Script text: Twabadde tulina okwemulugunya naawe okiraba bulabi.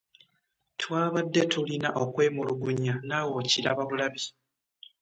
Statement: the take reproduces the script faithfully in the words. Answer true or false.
true